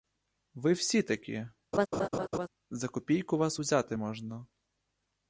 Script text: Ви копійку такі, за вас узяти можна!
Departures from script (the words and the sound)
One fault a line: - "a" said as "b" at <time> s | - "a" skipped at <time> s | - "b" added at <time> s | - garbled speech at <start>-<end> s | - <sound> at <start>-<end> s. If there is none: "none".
- "копійку" said as "всі" at 0.7 s
- laugh at 1.7-2.5 s
- "копійку" added at 2.9 s